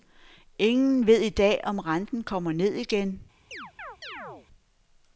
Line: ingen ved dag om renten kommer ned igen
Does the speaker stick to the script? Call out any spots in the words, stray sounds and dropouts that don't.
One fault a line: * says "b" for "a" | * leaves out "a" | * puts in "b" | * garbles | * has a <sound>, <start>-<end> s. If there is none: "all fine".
* puts in "i"
* has a chirp, 3.5-4.5 s